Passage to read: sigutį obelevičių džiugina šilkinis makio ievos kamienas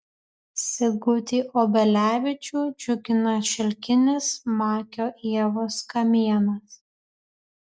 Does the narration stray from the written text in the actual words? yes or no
no